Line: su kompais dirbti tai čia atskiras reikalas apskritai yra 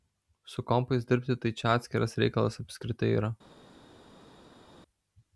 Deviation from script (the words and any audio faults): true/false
false